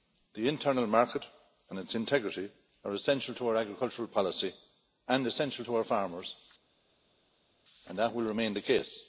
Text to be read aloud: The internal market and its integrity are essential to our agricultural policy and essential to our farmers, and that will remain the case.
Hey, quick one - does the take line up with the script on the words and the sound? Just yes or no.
yes